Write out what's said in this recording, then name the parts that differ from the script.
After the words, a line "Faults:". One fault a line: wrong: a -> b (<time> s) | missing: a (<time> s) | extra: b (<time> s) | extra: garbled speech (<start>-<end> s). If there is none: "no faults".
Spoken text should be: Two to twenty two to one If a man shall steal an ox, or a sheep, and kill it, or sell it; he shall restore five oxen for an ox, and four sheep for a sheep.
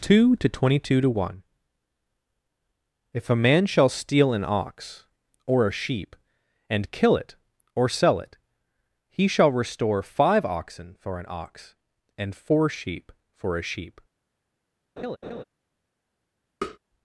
Two to twenty two to one If a man shall steal an ox, or a sheep, and kill it, or sell it; he shall restore five oxen for an ox, and four sheep for a sheep.
Faults:
no faults